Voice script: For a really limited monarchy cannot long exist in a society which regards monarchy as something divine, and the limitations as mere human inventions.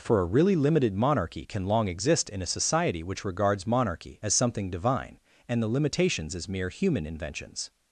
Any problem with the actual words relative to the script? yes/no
yes